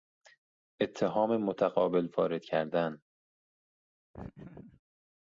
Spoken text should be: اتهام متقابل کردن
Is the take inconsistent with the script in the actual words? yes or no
yes